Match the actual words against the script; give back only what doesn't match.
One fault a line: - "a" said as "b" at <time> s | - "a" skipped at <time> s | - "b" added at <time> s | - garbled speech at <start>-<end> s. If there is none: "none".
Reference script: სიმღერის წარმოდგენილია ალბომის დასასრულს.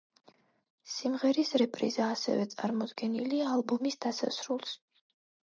- "რეპრიზა ასევე" added at 1.6 s